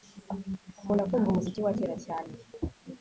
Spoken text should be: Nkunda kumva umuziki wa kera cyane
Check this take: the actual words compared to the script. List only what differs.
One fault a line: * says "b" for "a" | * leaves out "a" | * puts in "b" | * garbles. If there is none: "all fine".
all fine